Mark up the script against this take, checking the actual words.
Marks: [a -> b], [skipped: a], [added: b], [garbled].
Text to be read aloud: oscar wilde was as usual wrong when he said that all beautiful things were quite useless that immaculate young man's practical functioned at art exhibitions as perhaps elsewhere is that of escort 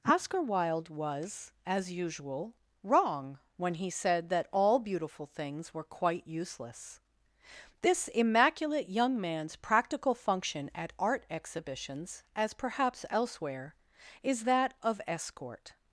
oscar wilde was as usual wrong when he said that all beautiful things were quite useless [that -> this] immaculate young man's practical [functioned -> function] at art exhibitions as perhaps elsewhere is that of escort